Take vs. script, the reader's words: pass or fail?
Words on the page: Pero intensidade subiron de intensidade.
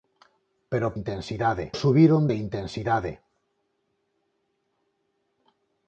pass